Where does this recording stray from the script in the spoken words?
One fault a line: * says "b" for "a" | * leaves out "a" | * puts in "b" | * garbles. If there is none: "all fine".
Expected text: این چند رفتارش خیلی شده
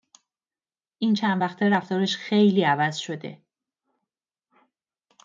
* puts in "وقته"
* puts in "عوض"